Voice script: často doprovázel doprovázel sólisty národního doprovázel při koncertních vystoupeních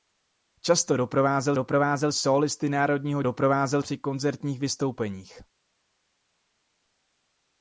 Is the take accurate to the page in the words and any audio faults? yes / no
yes